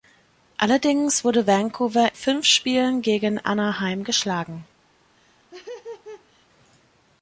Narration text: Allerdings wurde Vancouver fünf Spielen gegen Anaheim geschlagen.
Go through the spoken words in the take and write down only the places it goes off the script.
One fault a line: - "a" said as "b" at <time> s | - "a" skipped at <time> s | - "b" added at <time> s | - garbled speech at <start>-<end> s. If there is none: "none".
none